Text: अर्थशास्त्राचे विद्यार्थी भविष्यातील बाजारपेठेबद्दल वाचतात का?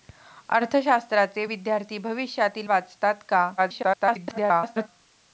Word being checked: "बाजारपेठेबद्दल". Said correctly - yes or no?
no